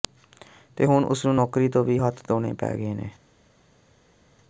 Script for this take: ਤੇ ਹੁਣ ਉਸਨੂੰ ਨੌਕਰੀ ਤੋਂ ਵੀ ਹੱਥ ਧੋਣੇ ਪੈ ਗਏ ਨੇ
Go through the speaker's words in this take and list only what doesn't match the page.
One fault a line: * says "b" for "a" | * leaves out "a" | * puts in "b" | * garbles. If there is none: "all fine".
all fine